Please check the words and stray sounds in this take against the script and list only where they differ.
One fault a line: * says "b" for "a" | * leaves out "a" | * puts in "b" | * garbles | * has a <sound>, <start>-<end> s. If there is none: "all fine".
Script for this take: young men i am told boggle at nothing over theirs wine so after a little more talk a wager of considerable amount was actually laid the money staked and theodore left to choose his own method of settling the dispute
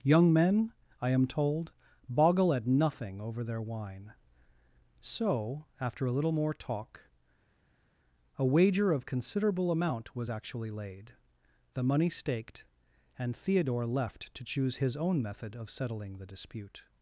* says "their" for "theirs"